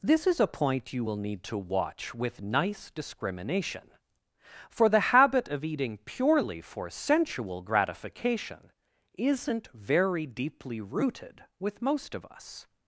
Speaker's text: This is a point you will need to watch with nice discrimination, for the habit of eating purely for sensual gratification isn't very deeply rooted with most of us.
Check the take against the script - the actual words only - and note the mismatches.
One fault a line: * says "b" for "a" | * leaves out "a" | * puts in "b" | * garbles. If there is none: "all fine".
all fine